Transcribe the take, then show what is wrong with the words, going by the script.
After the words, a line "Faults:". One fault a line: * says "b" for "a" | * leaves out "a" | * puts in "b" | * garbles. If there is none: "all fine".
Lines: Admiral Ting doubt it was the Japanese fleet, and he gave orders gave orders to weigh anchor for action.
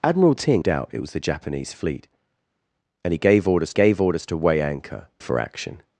Admiral Ting doubt it was the Japanese fleet, and he gave orders gave orders to weigh anchor for action.
Faults:
all fine